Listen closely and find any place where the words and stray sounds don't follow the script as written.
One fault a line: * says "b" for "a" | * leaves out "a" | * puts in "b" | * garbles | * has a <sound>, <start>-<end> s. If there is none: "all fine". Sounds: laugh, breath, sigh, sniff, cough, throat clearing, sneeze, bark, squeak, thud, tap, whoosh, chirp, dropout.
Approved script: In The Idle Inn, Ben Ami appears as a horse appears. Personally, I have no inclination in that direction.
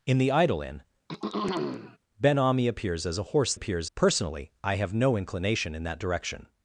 * has a throat clearing, 1.1-2.0 s